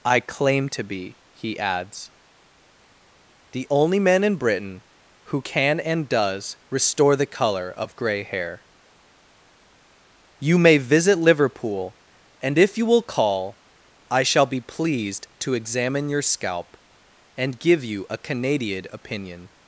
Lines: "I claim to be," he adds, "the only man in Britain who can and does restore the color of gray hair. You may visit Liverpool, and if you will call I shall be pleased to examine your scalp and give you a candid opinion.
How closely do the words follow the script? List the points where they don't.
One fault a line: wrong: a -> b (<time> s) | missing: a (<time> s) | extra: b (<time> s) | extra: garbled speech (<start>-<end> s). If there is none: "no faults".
wrong: candid -> canadian (18.2 s)